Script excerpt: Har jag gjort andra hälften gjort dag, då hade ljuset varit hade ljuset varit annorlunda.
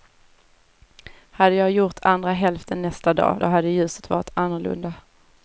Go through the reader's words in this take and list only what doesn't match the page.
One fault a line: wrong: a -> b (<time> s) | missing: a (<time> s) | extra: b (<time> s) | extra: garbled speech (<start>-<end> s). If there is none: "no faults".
wrong: Har -> Hade (1.3 s)
wrong: gjort -> nästa (2.8 s)
missing: hade ljuset varit (4.3 s)